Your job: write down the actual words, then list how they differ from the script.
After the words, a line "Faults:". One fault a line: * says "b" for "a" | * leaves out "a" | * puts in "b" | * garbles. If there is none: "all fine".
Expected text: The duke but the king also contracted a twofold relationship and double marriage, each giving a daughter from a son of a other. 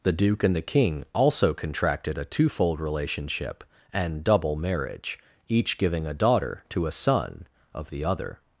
The duke and the king also contracted a twofold relationship and double marriage, each giving a daughter to a son of the other.
Faults:
* says "and" for "but"
* says "to" for "from"
* says "the" for "a"